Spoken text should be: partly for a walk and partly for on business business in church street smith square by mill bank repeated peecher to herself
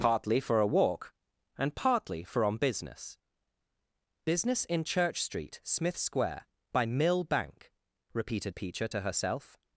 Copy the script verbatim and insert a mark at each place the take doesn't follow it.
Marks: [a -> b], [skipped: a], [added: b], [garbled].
partly for a walk and partly for on business business in church street smith square by mill bank repeated peecher to herself